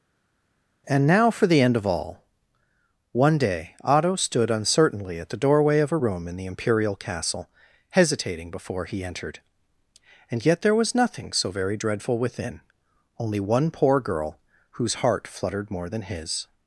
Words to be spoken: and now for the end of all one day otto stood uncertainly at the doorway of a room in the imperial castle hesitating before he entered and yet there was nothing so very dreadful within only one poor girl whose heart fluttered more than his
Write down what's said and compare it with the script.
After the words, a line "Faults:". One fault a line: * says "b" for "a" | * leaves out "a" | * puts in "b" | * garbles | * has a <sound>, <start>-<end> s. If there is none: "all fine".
and now for the end of all one day otto stood uncertainly at the doorway of a room in the imperial castle hesitating before he entered and yet there was nothing so very dreadful within only one poor girl whose heart fluttered more than his
Faults:
all fine